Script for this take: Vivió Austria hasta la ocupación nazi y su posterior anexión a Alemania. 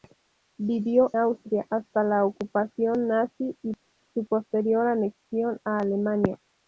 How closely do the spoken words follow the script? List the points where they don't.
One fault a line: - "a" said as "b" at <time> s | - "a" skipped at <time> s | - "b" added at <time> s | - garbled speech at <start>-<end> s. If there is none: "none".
none